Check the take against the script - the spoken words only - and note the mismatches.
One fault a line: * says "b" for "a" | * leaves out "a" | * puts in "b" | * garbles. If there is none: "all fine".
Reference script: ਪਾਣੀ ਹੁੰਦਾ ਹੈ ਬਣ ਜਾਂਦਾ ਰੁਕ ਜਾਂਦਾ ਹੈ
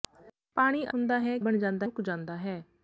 all fine